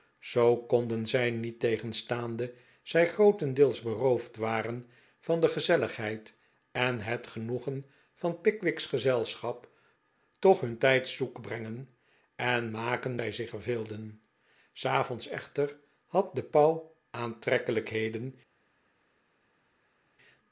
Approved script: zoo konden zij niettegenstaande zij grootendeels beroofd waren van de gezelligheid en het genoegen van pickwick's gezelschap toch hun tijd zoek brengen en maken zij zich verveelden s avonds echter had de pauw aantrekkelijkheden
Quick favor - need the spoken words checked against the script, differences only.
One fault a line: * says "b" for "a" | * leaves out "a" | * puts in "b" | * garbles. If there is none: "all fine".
all fine